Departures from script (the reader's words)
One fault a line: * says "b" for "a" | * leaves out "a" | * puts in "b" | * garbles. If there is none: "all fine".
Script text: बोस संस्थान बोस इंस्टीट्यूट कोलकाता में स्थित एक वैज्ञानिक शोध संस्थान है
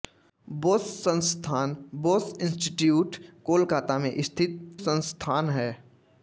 * leaves out "एक वैज्ञानिक शोध"